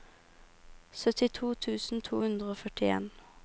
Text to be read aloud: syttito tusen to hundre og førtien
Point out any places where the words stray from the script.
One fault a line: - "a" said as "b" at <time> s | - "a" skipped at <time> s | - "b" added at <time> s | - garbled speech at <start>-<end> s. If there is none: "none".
none